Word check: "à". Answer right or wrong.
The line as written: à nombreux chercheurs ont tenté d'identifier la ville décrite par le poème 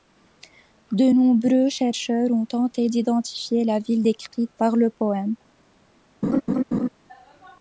wrong